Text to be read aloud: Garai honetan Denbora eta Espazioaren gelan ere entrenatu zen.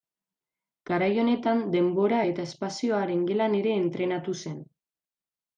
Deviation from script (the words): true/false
false